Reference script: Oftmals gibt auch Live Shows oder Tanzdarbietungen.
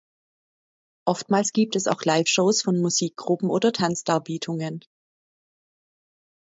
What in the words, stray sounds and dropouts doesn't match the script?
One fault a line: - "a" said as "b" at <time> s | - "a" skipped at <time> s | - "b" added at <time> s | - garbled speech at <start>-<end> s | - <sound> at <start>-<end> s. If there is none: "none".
- "es" added at 1.8 s
- "von Musikgruppen" added at 2.6 s